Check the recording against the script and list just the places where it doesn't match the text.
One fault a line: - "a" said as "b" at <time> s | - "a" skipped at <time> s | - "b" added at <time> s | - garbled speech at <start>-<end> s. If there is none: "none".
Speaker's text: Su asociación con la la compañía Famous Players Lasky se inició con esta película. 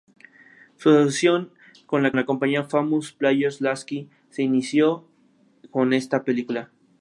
none